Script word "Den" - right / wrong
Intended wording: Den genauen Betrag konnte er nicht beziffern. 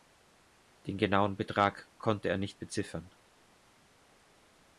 right